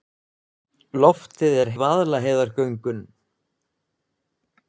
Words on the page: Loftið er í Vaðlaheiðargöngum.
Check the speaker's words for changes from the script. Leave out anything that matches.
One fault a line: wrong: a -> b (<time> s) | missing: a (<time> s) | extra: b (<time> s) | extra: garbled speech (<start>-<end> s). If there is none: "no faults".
no faults